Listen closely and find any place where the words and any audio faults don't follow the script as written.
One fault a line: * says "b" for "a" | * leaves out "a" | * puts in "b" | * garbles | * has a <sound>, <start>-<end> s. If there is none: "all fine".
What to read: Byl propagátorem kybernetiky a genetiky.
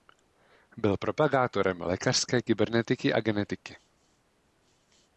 * puts in "lékařské"